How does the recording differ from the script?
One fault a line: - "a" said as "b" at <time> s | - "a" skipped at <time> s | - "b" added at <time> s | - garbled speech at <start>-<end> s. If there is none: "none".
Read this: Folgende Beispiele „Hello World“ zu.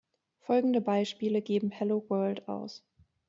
- "geben" added at 1.4 s
- "zu" said as "aus" at 2.5 s